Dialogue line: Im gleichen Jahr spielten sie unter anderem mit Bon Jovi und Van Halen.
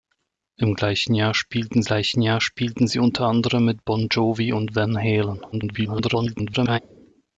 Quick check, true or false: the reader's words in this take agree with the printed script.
false